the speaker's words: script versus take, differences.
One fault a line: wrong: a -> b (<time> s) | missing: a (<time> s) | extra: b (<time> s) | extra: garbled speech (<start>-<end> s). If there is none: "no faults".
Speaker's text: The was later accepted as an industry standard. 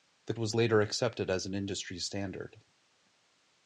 no faults